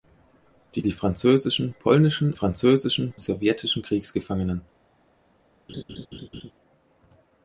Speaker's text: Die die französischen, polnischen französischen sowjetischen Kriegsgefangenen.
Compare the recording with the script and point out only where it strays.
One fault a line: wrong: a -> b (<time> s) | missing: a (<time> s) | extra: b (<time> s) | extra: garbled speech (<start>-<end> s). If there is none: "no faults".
no faults